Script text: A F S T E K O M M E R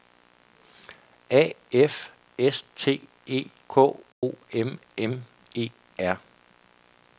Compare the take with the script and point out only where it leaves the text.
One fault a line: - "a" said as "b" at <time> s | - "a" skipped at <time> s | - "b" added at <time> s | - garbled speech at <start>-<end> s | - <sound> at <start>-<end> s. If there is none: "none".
- dropout at 4.1-4.2 s